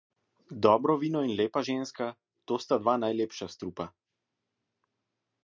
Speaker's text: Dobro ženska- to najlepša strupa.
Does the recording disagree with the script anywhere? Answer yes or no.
yes